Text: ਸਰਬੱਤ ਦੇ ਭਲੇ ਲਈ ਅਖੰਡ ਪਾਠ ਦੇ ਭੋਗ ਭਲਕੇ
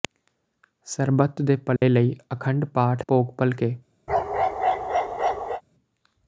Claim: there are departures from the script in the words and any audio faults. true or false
true